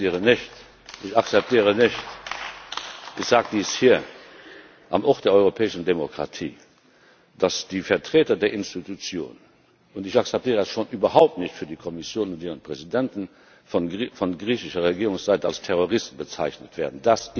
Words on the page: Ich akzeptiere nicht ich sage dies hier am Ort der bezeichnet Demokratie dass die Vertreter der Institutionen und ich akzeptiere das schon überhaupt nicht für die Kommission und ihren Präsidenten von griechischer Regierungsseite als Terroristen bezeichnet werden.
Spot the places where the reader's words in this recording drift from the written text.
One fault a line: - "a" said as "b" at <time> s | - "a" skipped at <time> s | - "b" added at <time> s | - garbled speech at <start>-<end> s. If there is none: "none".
- "bezeichnet" said as "europäischen" at 5.3 s